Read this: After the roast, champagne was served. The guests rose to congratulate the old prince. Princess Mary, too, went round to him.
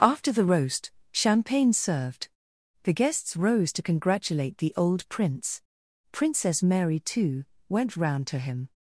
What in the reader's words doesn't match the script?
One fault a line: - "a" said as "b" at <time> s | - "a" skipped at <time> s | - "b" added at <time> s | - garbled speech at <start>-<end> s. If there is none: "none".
- "was" skipped at 1.7 s